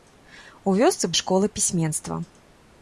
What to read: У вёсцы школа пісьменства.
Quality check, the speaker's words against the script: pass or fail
pass